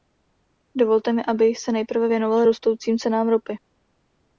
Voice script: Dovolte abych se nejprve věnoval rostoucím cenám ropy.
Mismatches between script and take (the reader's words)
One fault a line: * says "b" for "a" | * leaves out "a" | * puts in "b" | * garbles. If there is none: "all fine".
* puts in "mi"